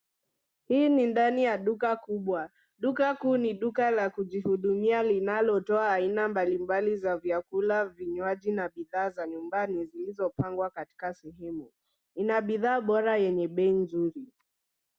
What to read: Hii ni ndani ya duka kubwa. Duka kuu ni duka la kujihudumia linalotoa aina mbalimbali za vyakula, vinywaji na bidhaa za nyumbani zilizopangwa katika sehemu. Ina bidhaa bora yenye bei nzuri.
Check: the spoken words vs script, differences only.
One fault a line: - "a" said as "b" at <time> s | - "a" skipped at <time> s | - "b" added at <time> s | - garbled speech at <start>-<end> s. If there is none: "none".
none